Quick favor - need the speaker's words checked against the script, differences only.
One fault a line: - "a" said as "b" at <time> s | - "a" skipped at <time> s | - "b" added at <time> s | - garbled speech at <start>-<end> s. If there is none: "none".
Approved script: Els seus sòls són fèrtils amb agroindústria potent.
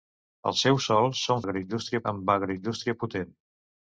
- "fèrtils" said as "agroindústria" at 1.4 s